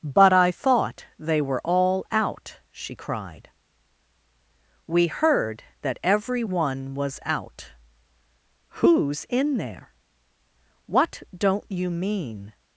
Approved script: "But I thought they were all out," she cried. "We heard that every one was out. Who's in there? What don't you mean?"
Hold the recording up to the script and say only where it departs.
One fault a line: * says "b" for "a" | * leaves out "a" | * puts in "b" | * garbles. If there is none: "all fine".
all fine